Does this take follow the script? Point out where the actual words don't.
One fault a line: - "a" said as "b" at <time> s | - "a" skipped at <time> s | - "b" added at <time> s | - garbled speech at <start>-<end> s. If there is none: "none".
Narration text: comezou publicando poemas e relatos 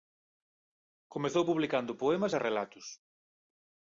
none